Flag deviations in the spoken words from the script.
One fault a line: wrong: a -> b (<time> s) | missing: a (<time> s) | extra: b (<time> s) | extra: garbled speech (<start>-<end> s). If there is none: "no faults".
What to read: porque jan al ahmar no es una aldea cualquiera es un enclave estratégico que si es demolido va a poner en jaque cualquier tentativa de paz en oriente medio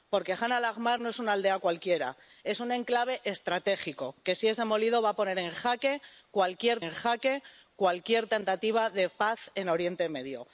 extra: en jaque cualquier (6.8 s)